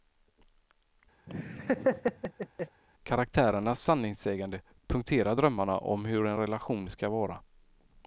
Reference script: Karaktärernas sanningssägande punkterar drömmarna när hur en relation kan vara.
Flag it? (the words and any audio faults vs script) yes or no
yes